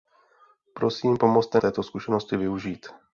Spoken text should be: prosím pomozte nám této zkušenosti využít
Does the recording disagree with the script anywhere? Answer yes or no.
yes